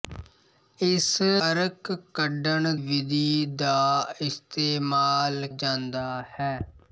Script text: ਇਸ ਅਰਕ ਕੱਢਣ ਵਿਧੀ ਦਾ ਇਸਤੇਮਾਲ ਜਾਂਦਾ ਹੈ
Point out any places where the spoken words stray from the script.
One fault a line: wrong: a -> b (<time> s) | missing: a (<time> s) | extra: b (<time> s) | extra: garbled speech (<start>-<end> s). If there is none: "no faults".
no faults